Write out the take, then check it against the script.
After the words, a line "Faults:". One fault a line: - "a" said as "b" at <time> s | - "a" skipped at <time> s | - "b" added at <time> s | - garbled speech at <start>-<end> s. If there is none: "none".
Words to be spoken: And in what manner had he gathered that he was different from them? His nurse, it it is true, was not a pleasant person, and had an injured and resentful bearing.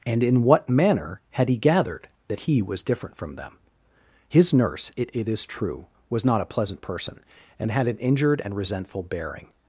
And in what manner had he gathered that he was different from them? His nurse, it it is true, was not a pleasant person, and had an injured and resentful bearing.
Faults:
none